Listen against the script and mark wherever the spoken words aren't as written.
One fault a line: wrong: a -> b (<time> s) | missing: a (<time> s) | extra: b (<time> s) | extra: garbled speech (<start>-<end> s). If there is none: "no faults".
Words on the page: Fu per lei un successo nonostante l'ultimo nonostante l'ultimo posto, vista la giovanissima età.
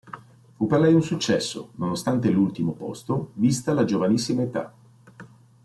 missing: nonostante l'ultimo (2.7 s)